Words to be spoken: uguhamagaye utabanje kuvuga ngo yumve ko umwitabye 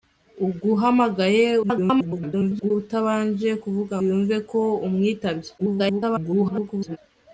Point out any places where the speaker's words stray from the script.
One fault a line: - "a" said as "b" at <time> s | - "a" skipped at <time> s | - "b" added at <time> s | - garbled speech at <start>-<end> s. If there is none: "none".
- garbled speech at 1.6-2.7 s
- "ngo" skipped at 4.0 s
- garbled speech at 5.6-7.0 s